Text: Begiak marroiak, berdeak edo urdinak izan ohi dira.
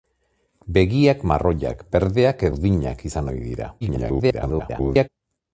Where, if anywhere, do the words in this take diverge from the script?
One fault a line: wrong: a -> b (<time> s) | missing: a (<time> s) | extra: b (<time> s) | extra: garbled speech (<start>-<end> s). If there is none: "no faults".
missing: edo (2.5 s)
extra: garbled speech (3.8-5.1 s)